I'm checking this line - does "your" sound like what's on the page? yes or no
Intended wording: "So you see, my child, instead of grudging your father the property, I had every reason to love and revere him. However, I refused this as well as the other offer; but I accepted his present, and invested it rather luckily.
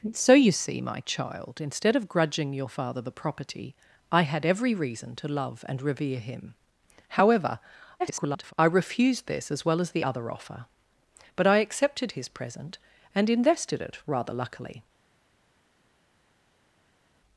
yes